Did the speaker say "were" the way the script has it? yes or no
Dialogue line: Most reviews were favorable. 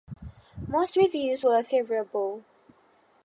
yes